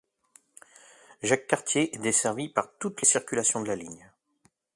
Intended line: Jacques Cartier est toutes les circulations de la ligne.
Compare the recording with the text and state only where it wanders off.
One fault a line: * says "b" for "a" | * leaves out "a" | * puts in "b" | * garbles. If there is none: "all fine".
* puts in "desservie par"